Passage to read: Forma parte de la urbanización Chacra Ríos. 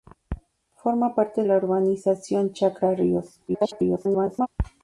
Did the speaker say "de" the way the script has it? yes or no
no